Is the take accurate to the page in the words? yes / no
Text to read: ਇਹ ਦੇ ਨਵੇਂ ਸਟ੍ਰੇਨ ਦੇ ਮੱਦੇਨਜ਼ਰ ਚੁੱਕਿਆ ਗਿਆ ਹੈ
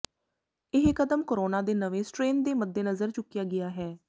no